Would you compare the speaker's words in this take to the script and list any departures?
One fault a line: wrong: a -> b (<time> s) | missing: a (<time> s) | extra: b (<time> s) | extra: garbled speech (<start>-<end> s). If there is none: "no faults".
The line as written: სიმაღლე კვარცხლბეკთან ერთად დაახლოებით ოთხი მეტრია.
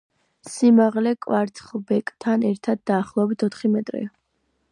no faults